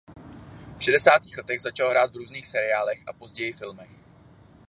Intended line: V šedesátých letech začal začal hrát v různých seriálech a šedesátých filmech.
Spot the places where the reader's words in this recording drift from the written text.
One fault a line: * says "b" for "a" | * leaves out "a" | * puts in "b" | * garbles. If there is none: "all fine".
* leaves out "začal"
* says "později" for "šedesátých"